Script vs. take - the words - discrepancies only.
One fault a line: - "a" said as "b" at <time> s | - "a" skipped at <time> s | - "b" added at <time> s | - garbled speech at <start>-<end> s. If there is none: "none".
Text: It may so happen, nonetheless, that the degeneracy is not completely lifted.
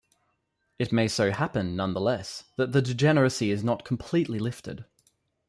none